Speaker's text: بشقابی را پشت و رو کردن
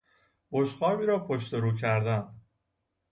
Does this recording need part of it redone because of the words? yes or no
no